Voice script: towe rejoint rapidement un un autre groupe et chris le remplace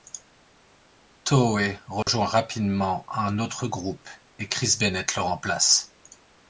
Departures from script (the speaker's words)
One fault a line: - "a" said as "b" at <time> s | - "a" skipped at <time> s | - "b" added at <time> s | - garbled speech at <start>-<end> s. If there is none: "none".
- "un" skipped at 3.4 s
- "bennett" added at 4.8 s